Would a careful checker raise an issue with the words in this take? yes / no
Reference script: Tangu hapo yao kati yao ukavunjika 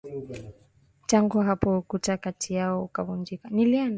yes